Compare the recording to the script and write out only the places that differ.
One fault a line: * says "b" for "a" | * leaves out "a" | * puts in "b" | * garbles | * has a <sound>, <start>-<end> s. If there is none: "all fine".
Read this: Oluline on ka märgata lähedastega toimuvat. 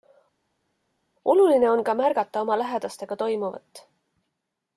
* puts in "oma"